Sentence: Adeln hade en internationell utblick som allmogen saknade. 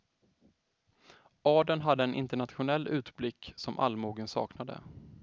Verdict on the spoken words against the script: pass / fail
pass